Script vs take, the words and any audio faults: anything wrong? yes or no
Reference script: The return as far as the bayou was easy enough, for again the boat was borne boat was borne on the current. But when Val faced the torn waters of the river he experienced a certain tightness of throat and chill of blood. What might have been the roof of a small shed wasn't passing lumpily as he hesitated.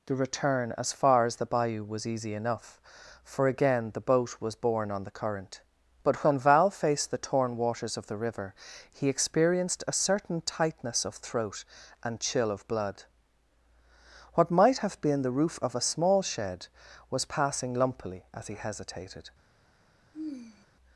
yes